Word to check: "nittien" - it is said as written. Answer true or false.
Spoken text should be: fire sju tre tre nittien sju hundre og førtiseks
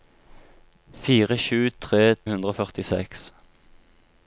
false